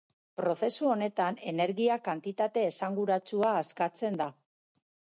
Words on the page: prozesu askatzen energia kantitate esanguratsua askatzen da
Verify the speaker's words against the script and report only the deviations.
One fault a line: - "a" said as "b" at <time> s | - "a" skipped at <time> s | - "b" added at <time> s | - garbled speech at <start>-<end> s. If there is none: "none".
- "askatzen" said as "honetan" at 0.9 s